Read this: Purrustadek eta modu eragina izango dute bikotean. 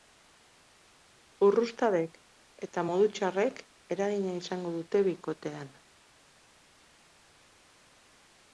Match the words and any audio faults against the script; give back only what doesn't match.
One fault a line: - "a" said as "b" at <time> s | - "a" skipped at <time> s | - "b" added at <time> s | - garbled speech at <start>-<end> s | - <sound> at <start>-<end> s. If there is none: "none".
- "txarrek" added at 3.2 s